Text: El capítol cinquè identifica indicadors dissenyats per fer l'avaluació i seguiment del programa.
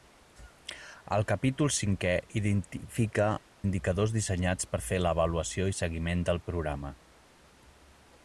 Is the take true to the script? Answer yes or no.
yes